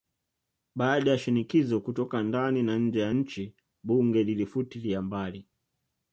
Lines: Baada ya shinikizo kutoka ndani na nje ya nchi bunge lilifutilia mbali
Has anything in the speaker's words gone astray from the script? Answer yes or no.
no